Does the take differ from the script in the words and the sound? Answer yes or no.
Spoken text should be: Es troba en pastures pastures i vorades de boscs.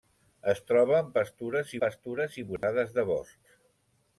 yes